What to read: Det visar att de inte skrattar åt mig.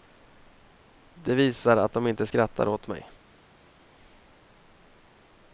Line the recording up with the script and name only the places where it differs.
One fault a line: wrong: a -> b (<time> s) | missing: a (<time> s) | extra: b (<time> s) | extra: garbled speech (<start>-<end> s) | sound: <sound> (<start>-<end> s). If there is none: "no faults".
no faults